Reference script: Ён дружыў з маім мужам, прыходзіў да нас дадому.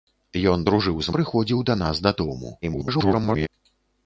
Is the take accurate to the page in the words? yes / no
no